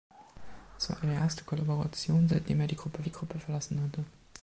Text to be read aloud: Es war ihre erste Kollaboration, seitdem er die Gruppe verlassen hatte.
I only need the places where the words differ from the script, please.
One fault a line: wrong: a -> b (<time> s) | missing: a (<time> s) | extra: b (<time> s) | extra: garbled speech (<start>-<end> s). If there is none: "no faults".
extra: die Gruppe (3.0 s)